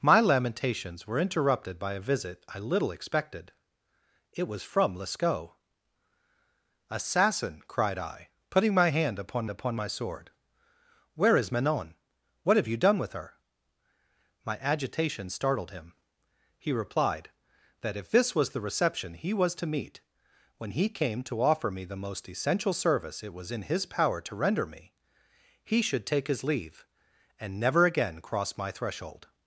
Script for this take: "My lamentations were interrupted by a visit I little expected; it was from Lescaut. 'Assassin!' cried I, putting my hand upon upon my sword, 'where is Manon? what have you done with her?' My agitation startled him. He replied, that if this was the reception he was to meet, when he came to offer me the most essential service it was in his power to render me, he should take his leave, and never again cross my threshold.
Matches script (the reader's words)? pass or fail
pass